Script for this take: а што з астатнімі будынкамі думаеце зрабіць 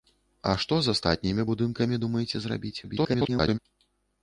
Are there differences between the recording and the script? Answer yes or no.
yes